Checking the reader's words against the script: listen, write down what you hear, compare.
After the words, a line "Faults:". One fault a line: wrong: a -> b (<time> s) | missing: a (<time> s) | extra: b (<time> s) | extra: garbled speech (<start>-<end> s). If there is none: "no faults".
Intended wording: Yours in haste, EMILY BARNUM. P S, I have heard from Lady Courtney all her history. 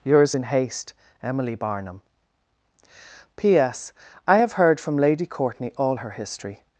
Yours in haste, EMILY BARNUM. P S, I have heard from Lady Courtney all her history.
Faults:
no faults